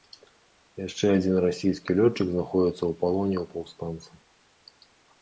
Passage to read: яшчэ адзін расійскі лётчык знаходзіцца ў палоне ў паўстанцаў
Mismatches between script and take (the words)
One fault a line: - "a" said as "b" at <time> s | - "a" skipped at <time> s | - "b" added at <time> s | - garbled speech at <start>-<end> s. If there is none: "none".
none